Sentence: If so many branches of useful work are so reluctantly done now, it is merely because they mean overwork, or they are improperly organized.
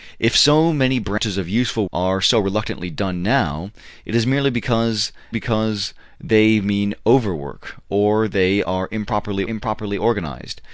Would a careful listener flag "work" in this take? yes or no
yes